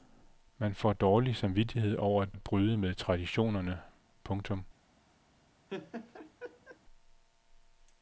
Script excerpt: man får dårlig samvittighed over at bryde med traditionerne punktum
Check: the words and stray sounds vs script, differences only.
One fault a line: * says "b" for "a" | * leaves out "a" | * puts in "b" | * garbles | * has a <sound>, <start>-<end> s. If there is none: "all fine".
* puts in "at"
* has a laugh, 5.7-6.8 s